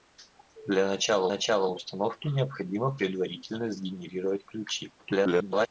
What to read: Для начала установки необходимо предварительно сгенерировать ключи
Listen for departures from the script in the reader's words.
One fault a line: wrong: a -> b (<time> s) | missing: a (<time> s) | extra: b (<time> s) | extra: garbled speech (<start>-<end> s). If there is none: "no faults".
extra: начала (1.3 s)
extra: garbled speech (5.0-5.7 s)